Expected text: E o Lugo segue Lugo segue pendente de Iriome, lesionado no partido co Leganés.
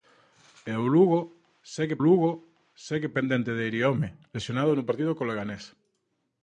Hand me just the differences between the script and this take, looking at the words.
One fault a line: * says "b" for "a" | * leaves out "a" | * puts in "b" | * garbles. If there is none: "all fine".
all fine